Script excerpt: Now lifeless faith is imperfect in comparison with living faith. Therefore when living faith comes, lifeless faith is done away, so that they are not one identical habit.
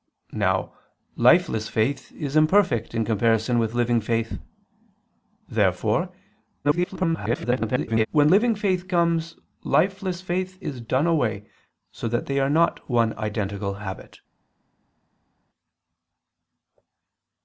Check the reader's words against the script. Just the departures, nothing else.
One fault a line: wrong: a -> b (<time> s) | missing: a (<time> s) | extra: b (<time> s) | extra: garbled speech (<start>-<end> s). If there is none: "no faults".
extra: garbled speech (6.6-8.1 s)